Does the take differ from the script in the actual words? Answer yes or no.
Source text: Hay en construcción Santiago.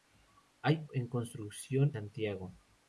no